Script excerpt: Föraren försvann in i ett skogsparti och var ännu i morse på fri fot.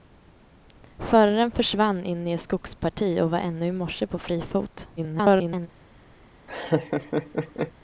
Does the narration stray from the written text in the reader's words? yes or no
yes